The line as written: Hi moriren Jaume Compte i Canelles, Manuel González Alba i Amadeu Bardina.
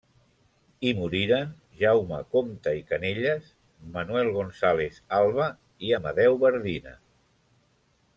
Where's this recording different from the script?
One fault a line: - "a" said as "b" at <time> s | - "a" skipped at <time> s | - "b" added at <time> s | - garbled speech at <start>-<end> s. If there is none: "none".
none